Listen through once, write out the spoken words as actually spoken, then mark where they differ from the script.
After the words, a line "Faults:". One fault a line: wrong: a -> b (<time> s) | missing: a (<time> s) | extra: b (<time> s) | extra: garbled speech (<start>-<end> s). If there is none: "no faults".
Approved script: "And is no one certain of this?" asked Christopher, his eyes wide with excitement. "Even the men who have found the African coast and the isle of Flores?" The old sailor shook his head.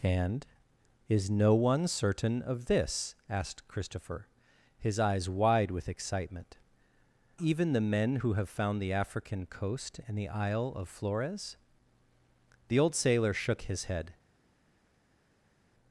"And is no one certain of this?" asked Christopher, his eyes wide with excitement. "Even the men who have found the African coast and the isle of Flores?" The old sailor shook his head.
Faults:
no faults